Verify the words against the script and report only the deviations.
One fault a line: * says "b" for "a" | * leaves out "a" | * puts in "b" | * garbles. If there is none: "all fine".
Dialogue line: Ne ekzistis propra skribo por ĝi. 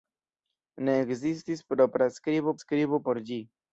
* puts in "skribo"